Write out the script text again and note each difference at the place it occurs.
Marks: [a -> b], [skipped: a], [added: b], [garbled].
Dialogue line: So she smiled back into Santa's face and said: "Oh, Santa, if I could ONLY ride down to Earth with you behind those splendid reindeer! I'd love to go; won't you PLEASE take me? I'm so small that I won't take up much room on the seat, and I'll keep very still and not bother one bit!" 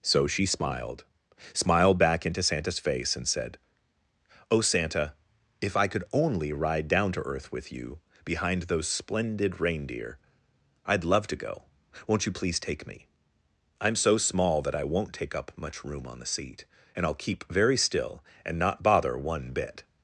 So she smiled [added: smiled] back into Santa's face and said: "Oh, Santa, if I could ONLY ride down to Earth with you behind those splendid reindeer! I'd love to go; won't you PLEASE take me? I'm so small that I won't take up much room on the seat, and I'll keep very still and not bother one bit!"